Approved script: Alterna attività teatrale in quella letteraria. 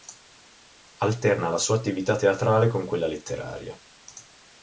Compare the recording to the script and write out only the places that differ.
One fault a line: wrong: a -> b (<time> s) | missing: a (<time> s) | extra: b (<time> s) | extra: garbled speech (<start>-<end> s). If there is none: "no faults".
extra: la sua (1.5 s)
wrong: in -> con (2.7 s)